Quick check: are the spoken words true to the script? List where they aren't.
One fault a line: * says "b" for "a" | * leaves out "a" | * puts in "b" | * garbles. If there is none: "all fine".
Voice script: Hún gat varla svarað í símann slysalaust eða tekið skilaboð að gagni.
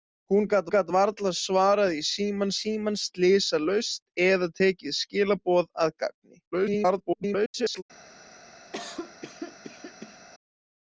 * puts in "gat"
* puts in "símann"
* garbles